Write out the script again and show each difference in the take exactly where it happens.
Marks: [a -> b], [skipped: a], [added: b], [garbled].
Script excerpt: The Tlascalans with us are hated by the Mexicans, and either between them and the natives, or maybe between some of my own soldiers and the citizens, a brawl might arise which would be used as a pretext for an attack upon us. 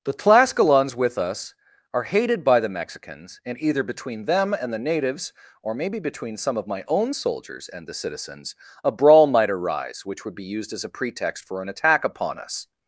The Tlascalans with us are hated by the Mexicans, and either between them and the natives, or maybe between some of my own soldiers and the citizens, a brawl might arise which would be used as a pretext for an attack upon us.